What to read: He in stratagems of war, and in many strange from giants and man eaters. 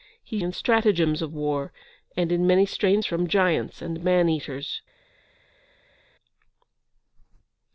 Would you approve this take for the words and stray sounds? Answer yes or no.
yes